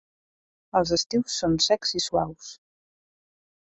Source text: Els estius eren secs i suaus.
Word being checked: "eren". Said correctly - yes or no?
no